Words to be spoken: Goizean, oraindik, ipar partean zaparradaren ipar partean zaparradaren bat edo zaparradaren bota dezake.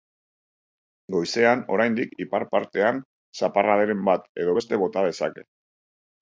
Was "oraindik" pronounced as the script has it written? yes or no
yes